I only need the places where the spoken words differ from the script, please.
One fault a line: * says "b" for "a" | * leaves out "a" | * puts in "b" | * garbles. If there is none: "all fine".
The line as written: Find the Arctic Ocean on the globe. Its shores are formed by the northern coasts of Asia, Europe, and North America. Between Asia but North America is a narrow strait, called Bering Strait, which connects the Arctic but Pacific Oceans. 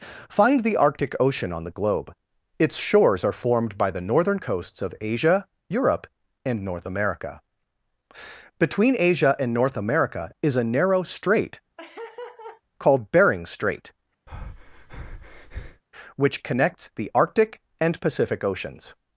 * says "and" for "but"
* says "and" for "but"